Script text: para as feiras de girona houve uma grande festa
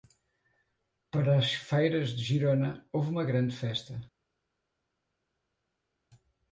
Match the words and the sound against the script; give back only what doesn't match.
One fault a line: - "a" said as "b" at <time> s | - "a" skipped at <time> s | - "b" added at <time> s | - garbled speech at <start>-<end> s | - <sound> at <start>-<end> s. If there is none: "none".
none